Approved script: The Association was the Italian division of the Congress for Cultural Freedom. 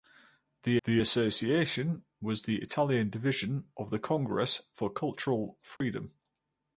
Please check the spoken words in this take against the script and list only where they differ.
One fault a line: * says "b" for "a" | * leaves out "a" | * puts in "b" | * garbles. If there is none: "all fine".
* puts in "the"